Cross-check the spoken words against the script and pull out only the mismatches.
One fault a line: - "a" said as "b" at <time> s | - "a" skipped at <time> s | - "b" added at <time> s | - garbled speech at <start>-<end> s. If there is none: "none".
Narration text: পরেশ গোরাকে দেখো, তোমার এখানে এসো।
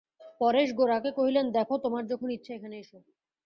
- "কহিলেন" added at 1.2 s
- "যখন ইচ্ছা" added at 2.1 s